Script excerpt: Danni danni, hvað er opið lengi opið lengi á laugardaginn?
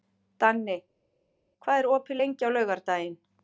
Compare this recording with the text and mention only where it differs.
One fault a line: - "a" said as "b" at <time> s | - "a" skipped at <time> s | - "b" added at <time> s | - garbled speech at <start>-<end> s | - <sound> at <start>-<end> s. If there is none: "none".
- "danni" skipped at 0.8 s
- "opið lengi" skipped at 2.5 s